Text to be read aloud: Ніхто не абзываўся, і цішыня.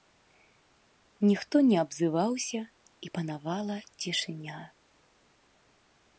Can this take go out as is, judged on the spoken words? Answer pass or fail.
fail